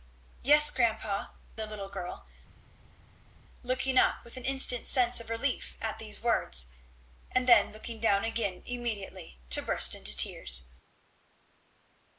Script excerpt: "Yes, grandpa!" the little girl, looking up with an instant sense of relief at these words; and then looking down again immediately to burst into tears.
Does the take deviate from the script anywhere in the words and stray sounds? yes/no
no